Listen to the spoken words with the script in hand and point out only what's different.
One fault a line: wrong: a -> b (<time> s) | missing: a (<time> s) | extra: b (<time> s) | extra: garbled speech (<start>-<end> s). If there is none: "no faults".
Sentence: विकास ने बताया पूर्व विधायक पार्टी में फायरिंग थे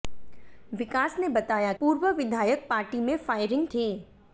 no faults